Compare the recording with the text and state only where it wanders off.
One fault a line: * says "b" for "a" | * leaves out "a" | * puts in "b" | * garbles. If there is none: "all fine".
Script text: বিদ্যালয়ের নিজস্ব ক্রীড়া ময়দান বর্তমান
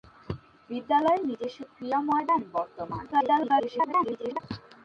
* garbles